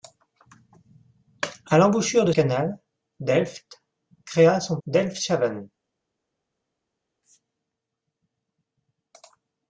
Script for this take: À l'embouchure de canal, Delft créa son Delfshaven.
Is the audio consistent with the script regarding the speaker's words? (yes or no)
yes